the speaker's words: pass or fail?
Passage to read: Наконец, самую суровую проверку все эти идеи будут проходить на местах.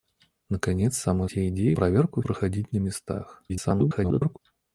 fail